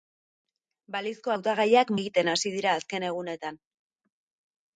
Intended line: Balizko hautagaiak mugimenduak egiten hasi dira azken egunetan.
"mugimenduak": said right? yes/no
no